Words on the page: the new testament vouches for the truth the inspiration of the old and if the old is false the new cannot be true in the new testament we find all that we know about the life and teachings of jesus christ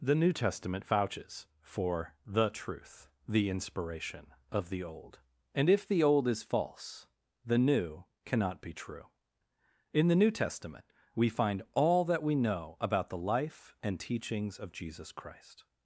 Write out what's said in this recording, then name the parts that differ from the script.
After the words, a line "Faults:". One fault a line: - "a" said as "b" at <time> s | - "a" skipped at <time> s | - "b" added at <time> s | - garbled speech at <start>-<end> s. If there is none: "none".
the new testament vouches for the truth the inspiration of the old and if the old is false the new cannot be true in the new testament we find all that we know about the life and teachings of jesus christ
Faults:
none